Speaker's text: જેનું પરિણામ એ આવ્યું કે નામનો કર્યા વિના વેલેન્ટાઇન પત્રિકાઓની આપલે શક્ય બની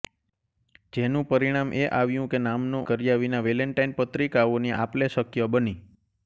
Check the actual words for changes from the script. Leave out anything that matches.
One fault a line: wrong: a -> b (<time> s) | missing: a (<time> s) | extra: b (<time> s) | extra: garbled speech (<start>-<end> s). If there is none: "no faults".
no faults